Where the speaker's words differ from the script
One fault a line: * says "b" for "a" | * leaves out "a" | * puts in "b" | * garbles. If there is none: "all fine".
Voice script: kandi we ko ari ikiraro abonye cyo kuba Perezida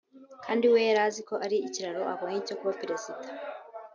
* puts in "yari azi"